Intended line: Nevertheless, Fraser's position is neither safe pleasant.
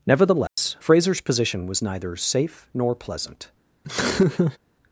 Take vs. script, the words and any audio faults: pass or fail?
fail